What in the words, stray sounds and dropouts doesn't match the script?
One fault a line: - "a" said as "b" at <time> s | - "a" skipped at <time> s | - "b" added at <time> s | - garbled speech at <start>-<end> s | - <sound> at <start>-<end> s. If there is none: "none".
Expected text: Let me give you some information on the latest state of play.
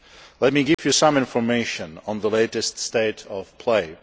- dropout at 0.7-0.8 s